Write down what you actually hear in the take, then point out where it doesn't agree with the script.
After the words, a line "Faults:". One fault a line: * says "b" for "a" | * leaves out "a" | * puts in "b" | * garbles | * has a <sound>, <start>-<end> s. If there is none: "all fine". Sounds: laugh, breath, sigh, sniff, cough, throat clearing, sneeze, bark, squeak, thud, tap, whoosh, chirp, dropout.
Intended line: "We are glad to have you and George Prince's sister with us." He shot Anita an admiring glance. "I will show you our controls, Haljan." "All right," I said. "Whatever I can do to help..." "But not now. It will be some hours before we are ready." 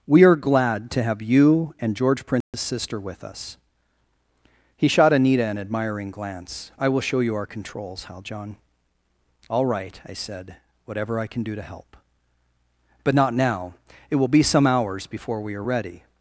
"We are glad to have you and George Prince's sister with us." He shot Anita an admiring glance. "I will show you our controls, Haljan." "All right," I said. "Whatever I can do to help..." "But not now. It will be some hours before we are ready."
Faults:
* has a dropout, 2.4-2.5 s